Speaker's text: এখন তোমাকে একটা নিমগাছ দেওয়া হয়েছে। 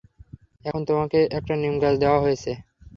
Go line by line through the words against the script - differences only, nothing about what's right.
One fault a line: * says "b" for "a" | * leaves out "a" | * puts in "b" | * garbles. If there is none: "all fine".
all fine